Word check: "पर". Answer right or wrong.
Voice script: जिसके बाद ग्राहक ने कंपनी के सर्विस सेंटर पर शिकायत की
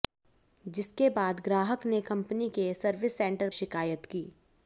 wrong